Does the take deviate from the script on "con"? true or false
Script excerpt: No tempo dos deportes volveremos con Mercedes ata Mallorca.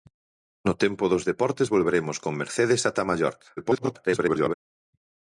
false